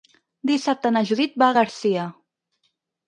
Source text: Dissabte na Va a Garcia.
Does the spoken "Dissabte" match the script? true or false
true